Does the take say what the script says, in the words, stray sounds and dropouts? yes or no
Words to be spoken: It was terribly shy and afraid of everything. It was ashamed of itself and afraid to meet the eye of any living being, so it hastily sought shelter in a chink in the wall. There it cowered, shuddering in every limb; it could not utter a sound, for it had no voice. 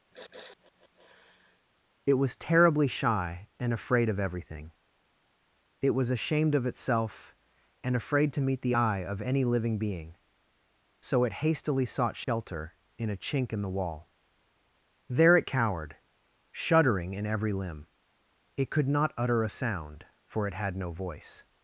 no